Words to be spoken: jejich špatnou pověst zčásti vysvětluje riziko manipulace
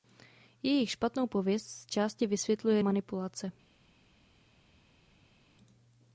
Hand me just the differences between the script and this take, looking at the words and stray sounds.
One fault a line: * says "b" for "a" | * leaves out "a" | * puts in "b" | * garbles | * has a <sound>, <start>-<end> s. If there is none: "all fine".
* leaves out "riziko"